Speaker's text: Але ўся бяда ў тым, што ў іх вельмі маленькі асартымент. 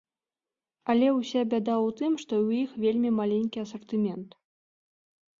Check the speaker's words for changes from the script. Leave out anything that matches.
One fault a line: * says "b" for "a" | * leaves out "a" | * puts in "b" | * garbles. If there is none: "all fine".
all fine